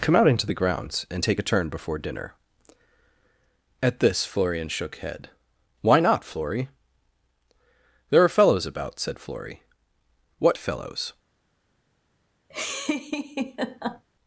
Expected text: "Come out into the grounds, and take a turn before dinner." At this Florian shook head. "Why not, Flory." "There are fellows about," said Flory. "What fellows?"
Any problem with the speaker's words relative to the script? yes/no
no